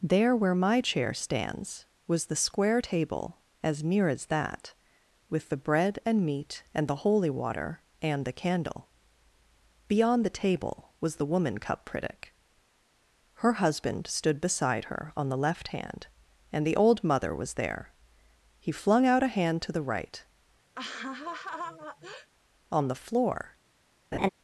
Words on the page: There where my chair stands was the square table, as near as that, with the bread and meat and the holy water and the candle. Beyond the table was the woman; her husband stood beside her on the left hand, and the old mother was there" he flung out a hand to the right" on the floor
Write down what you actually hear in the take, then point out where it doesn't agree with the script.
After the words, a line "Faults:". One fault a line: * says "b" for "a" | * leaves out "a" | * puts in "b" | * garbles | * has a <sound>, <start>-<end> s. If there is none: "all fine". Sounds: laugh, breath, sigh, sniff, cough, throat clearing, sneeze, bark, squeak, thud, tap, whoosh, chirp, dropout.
There where my chair stands was the square table, as near as that, with the bread and meat and the holy water and the candle. Beyond the table was the woman; cup critic her husband stood beside her on the left hand, and the old mother was there" he flung out a hand to the right" on the floor
Faults:
* puts in "cup critic"
* has a laugh, 20.7-22.3 s
* has a laugh, 24.1-24.3 s